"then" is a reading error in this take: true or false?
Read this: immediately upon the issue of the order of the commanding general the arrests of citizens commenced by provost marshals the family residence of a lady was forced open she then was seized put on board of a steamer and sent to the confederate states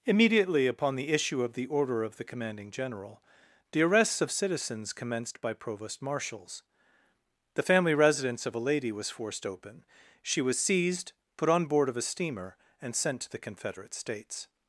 true